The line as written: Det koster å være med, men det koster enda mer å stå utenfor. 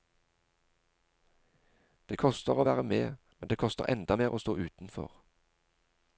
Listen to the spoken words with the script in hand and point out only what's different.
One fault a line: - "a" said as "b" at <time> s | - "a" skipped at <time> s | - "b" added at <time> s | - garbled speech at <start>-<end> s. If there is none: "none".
none